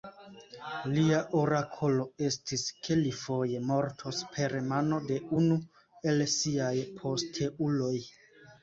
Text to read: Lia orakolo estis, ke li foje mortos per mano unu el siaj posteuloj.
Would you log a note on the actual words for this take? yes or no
yes